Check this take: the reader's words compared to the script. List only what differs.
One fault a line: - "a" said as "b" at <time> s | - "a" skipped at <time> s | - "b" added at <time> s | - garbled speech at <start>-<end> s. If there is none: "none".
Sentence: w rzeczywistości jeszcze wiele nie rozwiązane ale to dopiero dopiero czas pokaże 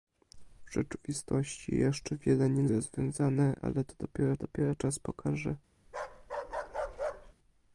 none